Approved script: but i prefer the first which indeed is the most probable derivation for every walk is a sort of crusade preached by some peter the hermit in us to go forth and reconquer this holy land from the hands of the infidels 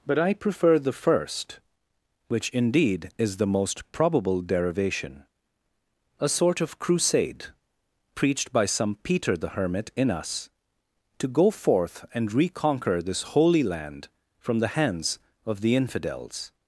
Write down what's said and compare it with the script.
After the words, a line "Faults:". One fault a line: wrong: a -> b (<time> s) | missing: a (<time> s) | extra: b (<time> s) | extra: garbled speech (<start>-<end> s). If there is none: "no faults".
but i prefer the first which indeed is the most probable derivation a sort of crusade preached by some peter the hermit in us to go forth and reconquer this holy land from the hands of the infidels
Faults:
missing: for every walk is (5.2 s)